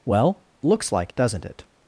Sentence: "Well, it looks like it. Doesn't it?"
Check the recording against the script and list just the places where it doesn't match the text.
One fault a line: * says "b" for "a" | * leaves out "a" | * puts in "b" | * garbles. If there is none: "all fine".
* leaves out "it"
* leaves out "it"